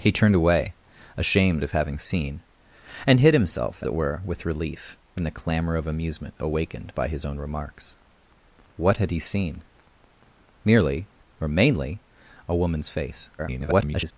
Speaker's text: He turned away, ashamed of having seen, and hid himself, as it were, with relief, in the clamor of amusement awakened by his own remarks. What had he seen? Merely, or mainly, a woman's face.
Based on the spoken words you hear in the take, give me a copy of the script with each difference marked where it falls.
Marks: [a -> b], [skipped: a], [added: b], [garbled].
He turned away, ashamed of having seen, and hid himself, [skipped: as] it were, with relief, in the clamor of amusement awakened by his own remarks. What had he seen? Merely, or mainly, a woman's face. [garbled]